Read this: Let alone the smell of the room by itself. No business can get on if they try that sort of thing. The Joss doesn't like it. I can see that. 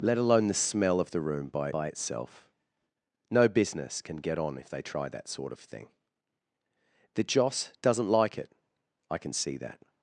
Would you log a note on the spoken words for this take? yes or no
yes